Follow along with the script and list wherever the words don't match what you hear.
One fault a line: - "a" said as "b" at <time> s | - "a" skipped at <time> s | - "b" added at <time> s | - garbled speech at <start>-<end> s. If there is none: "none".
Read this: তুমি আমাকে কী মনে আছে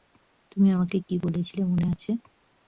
- "বলেছিলে" added at 1.2 s